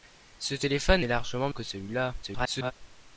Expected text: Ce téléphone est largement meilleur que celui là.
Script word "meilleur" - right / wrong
wrong